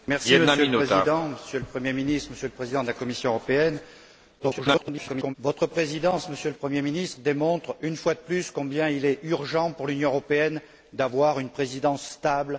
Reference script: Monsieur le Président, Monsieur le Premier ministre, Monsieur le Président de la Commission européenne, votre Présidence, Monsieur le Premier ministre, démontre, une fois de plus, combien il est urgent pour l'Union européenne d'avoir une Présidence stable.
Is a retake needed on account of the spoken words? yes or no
yes